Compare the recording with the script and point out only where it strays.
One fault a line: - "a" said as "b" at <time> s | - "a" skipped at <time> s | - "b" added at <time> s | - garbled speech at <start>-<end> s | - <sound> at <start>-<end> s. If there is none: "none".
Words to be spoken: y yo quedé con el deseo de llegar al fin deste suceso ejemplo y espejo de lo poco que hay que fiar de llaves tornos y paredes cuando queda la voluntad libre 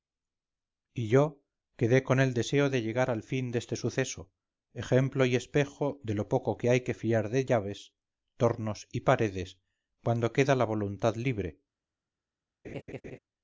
- laugh at 12.6-13.2 s